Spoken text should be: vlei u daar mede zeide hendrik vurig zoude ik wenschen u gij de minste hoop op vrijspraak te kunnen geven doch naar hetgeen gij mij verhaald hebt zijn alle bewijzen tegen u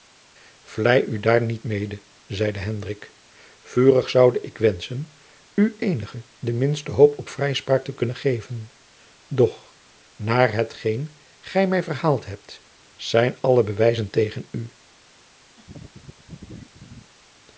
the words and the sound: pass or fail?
fail